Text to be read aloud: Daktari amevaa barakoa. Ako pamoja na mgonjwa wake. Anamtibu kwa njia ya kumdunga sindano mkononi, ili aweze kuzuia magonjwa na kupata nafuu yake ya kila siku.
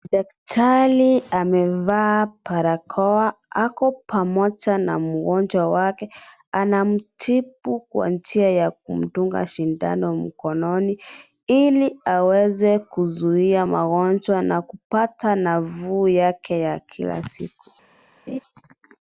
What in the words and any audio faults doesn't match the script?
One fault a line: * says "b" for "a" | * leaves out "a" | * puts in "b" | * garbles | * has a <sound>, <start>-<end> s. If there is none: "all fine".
* has a laugh, 18.3-18.4 s